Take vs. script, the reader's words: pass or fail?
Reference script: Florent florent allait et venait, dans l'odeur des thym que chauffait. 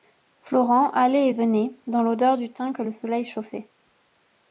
fail